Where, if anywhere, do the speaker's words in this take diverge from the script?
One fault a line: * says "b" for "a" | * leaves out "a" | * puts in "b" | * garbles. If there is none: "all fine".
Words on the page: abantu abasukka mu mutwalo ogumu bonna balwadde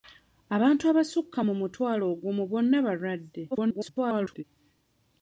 * garbles